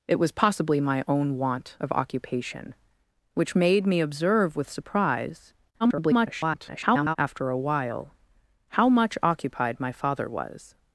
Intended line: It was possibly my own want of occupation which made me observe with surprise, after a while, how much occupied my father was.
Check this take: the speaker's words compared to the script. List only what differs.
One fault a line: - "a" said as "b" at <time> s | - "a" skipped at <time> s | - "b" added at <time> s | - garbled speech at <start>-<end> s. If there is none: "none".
- garbled speech at 5.8-7.2 s